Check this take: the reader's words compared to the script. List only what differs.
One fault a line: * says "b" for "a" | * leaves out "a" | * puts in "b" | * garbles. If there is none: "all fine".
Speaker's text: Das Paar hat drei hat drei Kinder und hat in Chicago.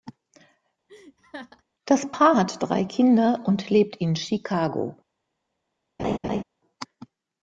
* leaves out "hat drei"
* says "lebt" for "hat"